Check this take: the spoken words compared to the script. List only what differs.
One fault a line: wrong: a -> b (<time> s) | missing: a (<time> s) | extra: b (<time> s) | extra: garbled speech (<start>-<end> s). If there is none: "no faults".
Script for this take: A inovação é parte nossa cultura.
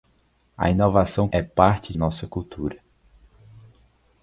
no faults